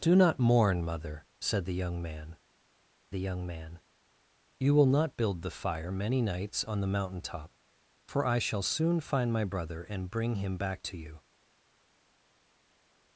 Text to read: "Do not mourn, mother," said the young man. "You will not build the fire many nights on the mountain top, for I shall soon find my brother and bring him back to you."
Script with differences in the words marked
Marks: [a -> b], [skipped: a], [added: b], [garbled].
"Do not mourn, mother," said the young man. [added: the young man] "You will not build the fire many nights on the mountain top, for I shall soon find my brother and bring him back to you."